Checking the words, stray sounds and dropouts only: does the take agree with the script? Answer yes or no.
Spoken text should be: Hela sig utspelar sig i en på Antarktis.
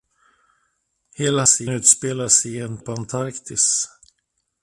yes